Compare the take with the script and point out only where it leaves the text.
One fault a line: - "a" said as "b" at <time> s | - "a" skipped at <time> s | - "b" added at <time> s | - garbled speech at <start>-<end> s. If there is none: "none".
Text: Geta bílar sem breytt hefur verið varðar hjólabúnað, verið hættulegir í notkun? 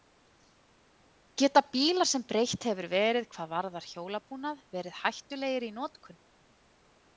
- "hvað" added at 3.4 s